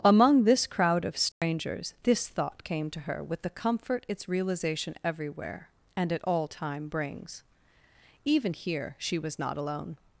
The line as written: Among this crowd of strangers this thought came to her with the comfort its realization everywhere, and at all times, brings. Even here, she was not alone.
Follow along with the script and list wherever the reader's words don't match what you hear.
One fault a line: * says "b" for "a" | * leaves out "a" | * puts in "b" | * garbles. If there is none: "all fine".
* says "time" for "times"